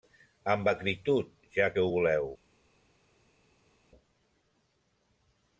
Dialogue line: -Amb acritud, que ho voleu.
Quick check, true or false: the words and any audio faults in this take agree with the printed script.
false